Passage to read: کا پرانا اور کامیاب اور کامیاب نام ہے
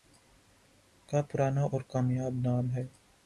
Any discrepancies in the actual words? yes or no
yes